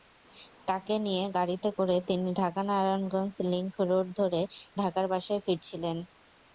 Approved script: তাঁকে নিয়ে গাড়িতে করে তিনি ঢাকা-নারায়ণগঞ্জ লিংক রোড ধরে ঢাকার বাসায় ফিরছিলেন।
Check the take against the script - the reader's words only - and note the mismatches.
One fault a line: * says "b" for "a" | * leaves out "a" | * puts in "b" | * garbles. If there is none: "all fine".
all fine